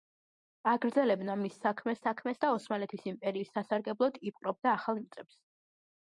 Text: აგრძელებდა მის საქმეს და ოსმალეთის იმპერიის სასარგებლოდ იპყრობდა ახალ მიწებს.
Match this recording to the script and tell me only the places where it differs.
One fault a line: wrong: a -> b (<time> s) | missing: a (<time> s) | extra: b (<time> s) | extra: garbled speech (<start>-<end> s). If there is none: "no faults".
extra: საქმეს (2.1 s)